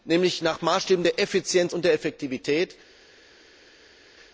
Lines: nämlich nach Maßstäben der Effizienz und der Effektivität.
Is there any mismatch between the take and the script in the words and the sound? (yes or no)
no